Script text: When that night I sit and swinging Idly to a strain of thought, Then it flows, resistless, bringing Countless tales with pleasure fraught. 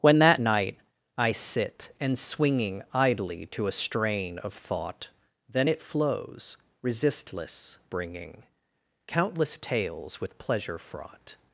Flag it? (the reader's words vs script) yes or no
no